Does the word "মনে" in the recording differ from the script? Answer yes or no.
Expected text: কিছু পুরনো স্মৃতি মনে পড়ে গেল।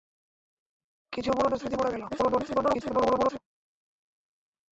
yes